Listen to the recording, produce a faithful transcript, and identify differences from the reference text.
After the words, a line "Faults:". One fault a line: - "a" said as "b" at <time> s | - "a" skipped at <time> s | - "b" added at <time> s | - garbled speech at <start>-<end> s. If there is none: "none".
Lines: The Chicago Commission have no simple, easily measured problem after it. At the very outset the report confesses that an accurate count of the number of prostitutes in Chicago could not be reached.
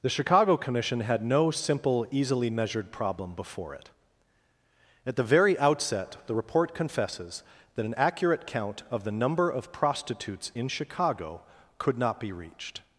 The Chicago Commission had no simple, easily measured problem before it. At the very outset the report confesses that an accurate count of the number of prostitutes in Chicago could not be reached.
Faults:
- "have" said as "had" at 1.0 s
- "after" said as "before" at 3.4 s